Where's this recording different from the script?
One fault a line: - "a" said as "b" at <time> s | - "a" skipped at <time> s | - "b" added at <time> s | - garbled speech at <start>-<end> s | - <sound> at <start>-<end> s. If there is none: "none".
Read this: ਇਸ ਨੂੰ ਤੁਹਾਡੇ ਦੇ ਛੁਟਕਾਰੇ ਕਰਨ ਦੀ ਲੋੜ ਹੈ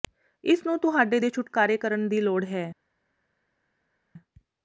none